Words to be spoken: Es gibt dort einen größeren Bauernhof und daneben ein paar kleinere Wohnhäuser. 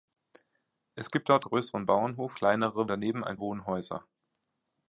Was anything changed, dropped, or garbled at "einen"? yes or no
yes